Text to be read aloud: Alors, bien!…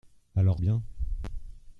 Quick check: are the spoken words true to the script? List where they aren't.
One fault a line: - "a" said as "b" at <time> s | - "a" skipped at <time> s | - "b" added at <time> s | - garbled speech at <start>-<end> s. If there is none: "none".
none